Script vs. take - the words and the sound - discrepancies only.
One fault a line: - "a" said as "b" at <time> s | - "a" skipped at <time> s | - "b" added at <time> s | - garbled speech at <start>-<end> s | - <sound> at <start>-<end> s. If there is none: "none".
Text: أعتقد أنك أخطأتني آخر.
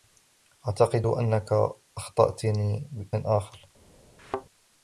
- thud at 4.2-4.5 s